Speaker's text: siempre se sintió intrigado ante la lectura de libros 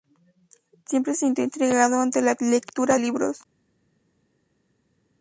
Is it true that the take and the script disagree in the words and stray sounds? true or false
true